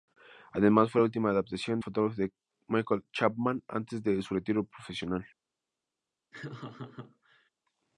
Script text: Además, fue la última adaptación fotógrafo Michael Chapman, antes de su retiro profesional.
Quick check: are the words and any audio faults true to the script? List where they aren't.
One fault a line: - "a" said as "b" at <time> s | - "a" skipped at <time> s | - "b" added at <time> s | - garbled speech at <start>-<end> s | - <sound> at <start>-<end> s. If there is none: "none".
- laugh at 6.3-7.5 s